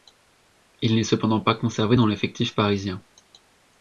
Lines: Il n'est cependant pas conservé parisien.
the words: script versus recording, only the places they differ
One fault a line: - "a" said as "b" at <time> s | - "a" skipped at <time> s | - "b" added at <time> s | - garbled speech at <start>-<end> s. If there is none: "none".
- "dans l'effectif" added at 1.9 s